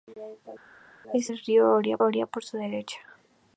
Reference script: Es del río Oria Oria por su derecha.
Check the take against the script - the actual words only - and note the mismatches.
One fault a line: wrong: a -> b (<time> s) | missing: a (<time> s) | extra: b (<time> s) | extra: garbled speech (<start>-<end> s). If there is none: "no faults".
no faults